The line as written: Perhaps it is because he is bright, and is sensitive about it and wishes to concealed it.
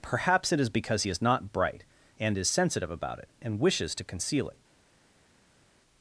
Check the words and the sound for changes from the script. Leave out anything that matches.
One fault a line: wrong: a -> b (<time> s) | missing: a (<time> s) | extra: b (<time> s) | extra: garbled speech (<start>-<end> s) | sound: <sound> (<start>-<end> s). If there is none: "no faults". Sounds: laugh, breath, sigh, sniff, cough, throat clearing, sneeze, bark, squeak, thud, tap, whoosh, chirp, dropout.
extra: not (1.2 s)
wrong: concealed -> conceal (4.0 s)